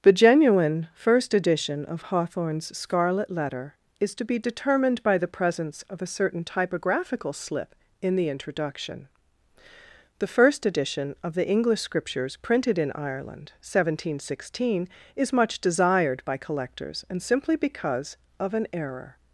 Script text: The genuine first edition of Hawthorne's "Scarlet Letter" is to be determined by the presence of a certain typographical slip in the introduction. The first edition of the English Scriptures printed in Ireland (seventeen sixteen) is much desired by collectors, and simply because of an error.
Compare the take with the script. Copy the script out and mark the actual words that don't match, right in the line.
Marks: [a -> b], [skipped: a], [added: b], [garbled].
The genuine first edition of Hawthorne's "Scarlet Letter" is to be determined by the presence of a certain typographical slip in the introduction. The first edition of the English Scriptures printed in Ireland (seventeen sixteen) is much desired by collectors, and simply because of an error.